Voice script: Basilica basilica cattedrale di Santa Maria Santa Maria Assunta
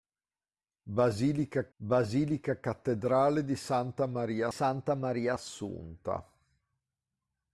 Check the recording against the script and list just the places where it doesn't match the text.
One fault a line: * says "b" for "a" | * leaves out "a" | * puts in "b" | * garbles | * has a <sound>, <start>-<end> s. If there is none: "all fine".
all fine